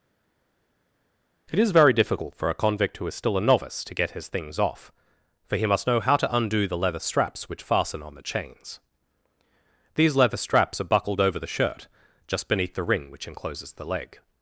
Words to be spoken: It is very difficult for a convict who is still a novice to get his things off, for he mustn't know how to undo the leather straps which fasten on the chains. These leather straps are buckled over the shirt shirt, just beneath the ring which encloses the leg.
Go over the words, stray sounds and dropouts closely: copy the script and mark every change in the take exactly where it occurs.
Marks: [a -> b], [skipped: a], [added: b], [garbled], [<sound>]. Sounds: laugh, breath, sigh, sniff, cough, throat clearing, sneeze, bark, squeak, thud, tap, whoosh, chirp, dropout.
It is very difficult for a convict who is still a novice to get his things off, for he [mustn't -> must] know how to undo the leather straps which fasten on the chains. These leather straps are buckled over the shirt [skipped: shirt,] just beneath the ring which encloses the leg.